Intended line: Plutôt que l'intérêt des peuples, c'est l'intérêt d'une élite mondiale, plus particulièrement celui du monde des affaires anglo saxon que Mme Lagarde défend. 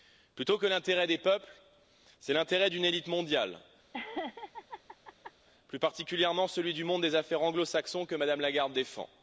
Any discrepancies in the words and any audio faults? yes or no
yes